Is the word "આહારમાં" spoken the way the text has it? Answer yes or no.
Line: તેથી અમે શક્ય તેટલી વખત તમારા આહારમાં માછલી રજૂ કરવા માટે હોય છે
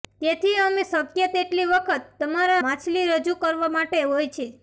no